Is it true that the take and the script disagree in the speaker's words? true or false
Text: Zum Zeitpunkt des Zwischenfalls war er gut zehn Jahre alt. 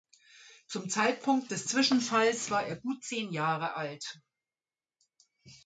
false